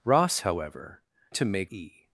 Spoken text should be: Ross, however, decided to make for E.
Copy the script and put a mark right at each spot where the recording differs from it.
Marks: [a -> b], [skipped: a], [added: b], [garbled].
Ross, however, [skipped: decided] to make [skipped: for] E.